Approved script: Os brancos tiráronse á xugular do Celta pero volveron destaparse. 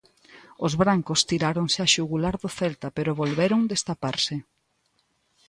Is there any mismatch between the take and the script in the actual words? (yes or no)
no